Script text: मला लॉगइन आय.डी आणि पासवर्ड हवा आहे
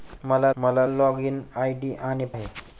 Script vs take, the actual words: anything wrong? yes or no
yes